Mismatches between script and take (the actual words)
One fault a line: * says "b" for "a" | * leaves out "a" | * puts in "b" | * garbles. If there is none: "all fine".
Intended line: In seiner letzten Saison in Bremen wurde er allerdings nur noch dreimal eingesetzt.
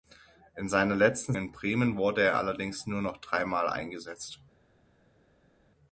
* leaves out "Saison"